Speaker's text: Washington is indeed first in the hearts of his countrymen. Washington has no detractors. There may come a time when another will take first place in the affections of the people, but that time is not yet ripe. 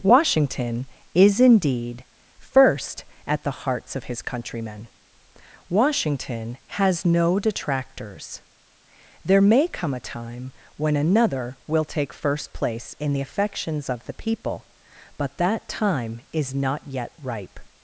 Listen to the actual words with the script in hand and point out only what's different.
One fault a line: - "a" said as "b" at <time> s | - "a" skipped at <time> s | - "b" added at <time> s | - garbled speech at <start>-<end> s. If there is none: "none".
- "in" said as "at" at 3.3 s